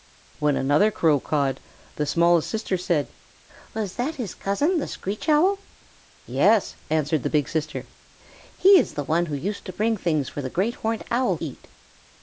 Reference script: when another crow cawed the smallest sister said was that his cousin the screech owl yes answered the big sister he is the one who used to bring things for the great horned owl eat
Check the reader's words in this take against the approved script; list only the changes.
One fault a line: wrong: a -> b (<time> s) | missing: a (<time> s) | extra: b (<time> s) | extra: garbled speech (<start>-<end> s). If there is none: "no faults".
no faults